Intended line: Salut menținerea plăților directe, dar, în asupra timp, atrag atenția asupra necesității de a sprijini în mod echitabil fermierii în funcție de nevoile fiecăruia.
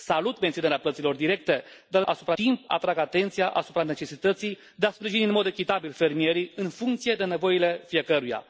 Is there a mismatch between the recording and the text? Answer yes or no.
no